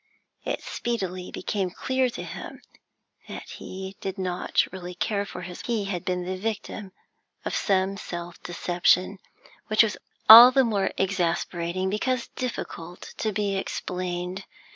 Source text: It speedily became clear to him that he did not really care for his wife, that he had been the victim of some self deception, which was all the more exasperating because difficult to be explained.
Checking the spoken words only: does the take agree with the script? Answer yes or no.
no